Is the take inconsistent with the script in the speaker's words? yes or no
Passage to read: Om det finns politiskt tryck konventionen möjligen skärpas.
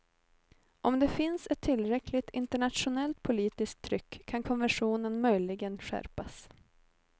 yes